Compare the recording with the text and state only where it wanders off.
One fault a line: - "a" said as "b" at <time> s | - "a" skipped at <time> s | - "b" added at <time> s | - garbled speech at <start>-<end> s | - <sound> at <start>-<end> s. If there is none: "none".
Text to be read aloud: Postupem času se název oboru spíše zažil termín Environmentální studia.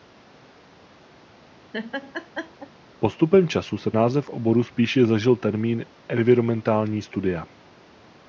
- laugh at 1.7-2.7 s